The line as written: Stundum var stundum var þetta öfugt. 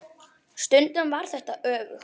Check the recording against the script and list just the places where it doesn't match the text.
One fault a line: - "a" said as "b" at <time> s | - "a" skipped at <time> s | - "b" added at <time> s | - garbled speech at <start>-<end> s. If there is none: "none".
- "stundum var" skipped at 1.3 s